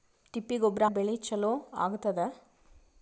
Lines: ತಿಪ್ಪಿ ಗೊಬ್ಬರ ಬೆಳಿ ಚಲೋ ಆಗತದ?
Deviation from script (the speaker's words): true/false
false